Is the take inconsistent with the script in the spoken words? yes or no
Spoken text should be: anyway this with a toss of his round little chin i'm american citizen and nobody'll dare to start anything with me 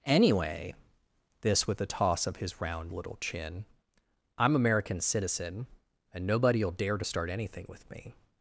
no